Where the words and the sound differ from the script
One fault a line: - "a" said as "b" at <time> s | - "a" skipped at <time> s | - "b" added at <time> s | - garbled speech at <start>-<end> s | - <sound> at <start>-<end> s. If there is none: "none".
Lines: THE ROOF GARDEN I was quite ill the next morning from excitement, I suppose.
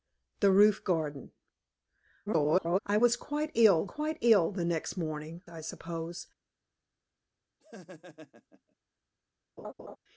- garbled speech at 2.3-2.8 s
- "quite ill" added at 3.8 s
- "from excitement" skipped at 5.4 s
- laugh at 7.6-8.8 s
- laugh at 9.6-10.0 s